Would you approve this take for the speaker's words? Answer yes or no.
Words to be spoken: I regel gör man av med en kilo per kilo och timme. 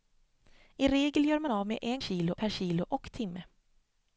yes